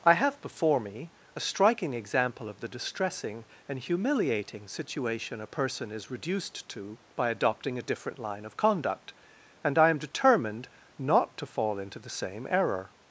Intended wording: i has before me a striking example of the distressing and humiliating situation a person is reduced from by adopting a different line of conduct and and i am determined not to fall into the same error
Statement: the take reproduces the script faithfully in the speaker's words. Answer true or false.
false